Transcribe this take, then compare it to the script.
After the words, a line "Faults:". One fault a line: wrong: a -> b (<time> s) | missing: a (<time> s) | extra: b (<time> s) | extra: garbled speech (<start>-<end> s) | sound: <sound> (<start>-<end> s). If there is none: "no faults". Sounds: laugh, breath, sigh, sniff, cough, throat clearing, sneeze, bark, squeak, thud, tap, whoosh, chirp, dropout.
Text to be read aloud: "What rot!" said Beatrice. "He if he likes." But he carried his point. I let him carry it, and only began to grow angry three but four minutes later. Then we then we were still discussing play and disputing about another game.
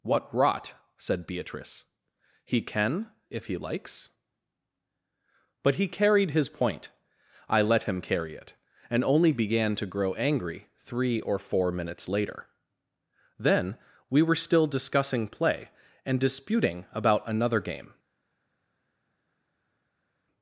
"What rot!" said Beatrice. "He can if he likes." But he carried his point. I let him carry it, and only began to grow angry three or four minutes later. Then we were still discussing play and disputing about another game.
Faults:
extra: can (2.6 s)
wrong: but -> or (11.2 s)
missing: then we (14.2 s)